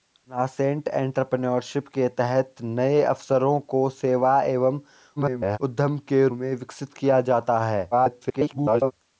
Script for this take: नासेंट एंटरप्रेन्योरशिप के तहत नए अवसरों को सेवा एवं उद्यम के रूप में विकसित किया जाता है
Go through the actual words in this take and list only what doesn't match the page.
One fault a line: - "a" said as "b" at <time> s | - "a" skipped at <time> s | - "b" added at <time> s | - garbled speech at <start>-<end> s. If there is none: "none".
- garbled speech at 5.2-5.6 s
- "रूप" skipped at 6.3 s
- garbled speech at 7.9-8.9 s